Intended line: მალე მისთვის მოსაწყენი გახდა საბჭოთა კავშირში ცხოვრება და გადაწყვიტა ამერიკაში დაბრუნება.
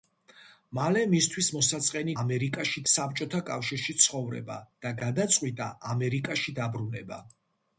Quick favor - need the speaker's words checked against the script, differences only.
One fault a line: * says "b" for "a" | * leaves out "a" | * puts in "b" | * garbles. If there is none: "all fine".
* says "ამერიკაში" for "გახდა"